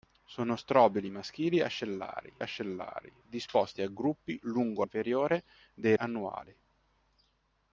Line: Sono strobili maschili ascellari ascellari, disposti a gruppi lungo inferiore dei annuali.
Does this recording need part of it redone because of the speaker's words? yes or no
no